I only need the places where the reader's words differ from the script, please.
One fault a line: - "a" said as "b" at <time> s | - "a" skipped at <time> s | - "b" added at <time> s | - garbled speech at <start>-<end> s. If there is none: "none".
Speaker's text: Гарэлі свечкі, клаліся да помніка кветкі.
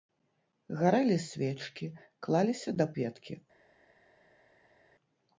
- "помніка" skipped at 2.9 s